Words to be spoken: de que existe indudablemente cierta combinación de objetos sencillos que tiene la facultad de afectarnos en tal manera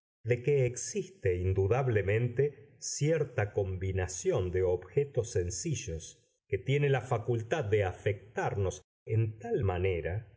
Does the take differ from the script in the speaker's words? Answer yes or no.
no